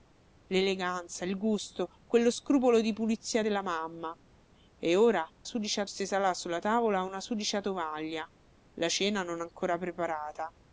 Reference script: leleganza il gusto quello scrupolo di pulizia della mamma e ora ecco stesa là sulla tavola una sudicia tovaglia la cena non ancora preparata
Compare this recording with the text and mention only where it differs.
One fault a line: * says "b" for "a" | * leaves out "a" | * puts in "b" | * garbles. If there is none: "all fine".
* says "sudicia" for "ecco"